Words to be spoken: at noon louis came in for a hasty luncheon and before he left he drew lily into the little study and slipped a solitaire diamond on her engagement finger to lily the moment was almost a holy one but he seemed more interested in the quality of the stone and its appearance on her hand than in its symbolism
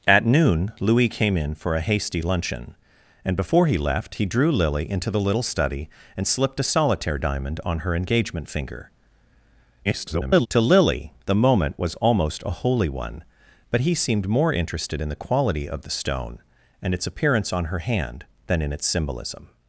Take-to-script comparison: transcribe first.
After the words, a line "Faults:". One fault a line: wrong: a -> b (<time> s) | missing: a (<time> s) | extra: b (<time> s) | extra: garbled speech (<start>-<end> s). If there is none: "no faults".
at noon louis came in for a hasty luncheon and before he left he drew lily into the little study and slipped a solitaire diamond on her engagement finger [garbled] to lily the moment was almost a holy one but he seemed more interested in the quality of the stone and its appearance on her hand than in its symbolism
Faults:
extra: garbled speech (9.8-10.5 s)